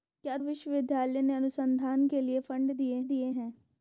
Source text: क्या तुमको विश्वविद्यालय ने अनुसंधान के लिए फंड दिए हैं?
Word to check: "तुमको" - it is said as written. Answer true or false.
false